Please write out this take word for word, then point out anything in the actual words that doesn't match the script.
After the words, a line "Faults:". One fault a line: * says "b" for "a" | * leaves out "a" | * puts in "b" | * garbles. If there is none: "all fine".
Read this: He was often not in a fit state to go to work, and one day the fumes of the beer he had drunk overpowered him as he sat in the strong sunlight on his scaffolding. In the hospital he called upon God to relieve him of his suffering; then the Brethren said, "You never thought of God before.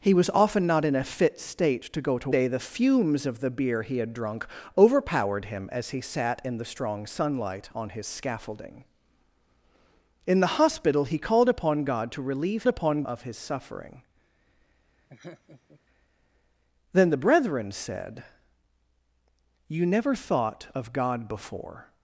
He was often not in a fit state to go to day the fumes of the beer he had drunk overpowered him as he sat in the strong sunlight on his scaffolding. In the hospital he called upon God to relieve upon of his suffering; then the Brethren said, "You never thought of God before.
Faults:
* leaves out "work and one"
* says "upon" for "him"